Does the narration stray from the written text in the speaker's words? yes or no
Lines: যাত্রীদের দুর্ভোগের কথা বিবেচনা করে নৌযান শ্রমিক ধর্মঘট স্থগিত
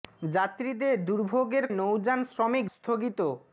yes